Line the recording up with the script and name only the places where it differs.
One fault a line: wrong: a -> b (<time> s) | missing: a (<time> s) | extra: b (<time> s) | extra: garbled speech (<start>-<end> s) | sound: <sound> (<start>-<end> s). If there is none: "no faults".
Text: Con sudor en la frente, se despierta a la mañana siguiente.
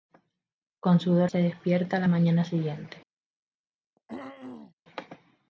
missing: en la frente (1.3 s)
sound: throat clearing (4.0-4.7 s)